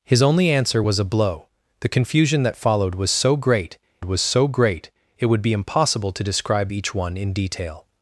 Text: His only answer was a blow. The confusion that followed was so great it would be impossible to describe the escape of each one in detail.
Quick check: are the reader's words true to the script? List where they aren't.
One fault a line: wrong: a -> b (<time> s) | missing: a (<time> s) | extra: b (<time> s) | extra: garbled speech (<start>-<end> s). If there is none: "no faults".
extra: was so great (4.0 s)
missing: the escape of (6.7 s)